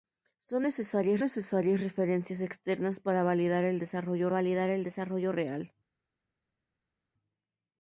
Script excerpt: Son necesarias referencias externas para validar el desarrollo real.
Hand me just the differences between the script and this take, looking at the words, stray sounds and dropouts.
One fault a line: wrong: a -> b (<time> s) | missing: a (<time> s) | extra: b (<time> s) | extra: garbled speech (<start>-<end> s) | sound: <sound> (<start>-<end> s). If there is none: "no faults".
extra: necesarias (1.2 s)
extra: validar el desarrollo (4.3 s)